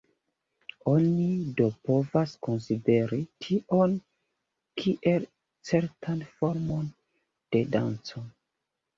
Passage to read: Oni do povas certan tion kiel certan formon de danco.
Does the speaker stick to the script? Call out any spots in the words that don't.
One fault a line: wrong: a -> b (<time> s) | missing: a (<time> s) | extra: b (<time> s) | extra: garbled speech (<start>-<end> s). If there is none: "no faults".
wrong: certan -> konsideri (2.5 s)